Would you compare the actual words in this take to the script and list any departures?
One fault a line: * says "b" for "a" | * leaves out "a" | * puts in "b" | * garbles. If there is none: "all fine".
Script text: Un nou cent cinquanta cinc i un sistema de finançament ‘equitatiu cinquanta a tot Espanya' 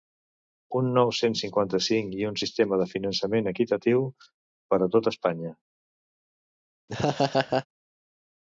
* says "per" for "cinquanta"